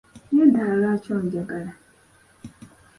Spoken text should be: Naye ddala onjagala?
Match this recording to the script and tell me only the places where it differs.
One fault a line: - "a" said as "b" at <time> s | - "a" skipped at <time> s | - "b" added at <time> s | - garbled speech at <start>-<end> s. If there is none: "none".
- "lwaki" added at 0.8 s